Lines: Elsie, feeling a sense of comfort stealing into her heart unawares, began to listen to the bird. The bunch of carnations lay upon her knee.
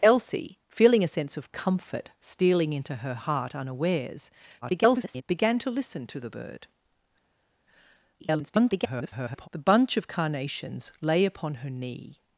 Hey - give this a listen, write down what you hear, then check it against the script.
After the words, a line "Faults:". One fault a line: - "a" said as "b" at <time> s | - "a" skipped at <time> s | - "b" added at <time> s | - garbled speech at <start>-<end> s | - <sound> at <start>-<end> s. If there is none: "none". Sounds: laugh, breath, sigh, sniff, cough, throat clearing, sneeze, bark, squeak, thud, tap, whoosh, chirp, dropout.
Elsie, feeling a sense of comfort stealing into her heart unawares, [garbled] began to listen to the bird. [garbled] The bunch of carnations lay upon her knee.
Faults:
- garbled speech at 4.6-5.2 s
- garbled speech at 8.2-9.5 s